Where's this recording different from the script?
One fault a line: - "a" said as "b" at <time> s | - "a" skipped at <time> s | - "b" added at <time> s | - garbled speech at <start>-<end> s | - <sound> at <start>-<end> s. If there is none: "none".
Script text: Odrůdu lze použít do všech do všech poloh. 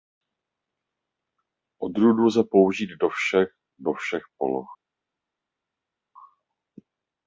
none